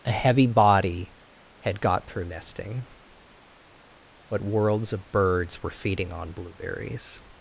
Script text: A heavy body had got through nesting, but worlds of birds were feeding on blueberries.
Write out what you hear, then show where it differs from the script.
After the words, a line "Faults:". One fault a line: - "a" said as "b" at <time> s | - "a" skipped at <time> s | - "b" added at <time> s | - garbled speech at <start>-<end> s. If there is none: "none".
A heavy body had got through nesting, but worlds of birds were feeding on blueberries.
Faults:
none